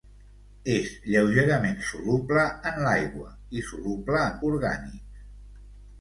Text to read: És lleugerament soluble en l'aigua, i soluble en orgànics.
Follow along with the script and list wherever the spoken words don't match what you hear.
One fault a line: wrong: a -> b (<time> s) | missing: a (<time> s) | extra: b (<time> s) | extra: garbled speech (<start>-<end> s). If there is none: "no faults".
no faults